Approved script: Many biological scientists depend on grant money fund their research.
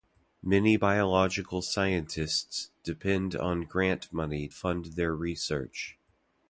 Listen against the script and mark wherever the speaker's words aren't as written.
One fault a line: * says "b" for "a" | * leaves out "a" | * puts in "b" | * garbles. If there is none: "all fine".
all fine